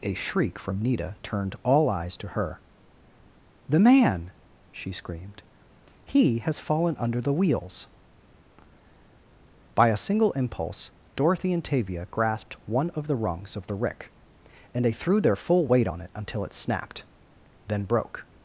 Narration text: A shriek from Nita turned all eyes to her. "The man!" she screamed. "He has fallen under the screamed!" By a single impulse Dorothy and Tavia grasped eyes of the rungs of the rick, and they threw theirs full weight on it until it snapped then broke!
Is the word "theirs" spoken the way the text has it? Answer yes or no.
no